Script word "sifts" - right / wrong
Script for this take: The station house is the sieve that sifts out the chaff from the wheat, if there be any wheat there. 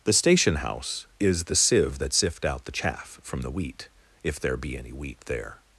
wrong